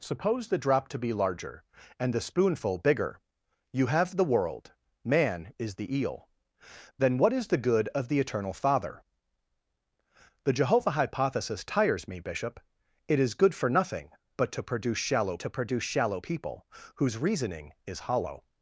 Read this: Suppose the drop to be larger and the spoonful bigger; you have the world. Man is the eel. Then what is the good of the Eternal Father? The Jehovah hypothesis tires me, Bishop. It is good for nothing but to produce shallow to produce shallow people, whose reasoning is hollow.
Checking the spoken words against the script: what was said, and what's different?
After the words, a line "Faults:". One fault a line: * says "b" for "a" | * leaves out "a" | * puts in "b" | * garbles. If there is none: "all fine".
Suppose the drop to be larger and the spoonful bigger; you have the world. Man is the eel. Then what is the good of the Eternal Father? The Jehovah hypothesis tires me, Bishop. It is good for nothing but to produce shallow to produce shallow people, whose reasoning is hollow.
Faults:
all fine